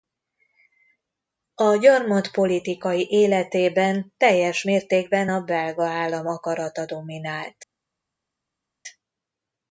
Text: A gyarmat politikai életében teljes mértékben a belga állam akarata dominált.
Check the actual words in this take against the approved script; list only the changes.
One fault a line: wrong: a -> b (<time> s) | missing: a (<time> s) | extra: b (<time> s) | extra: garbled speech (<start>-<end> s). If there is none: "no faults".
no faults